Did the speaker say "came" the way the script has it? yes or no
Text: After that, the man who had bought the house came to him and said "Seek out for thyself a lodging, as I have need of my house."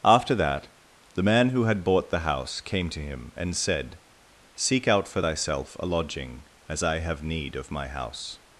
yes